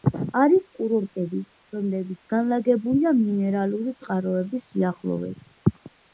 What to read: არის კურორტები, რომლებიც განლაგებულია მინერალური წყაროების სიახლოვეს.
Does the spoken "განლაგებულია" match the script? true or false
true